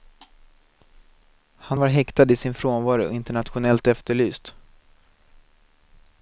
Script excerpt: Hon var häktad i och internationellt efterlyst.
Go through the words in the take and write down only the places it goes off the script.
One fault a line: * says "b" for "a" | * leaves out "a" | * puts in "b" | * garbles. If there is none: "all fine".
* says "Han" for "Hon"
* puts in "sin frånvaro"